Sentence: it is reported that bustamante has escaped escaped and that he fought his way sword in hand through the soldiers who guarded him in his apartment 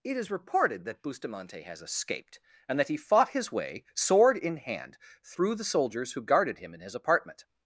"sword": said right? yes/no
yes